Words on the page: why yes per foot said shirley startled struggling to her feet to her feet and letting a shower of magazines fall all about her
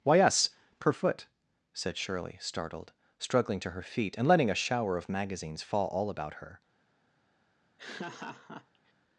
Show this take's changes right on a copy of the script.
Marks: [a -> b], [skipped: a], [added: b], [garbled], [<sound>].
why yes per foot said shirley startled struggling to her feet [skipped: to her feet] and letting a shower of magazines fall all about her [laugh]